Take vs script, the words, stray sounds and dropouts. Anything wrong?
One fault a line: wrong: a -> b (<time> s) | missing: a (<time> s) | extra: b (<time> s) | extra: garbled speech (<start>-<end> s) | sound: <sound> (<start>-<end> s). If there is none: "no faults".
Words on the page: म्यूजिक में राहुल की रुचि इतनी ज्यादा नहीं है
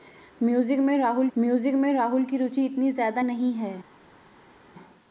extra: म्यूजिक में राहुल (1.4 s)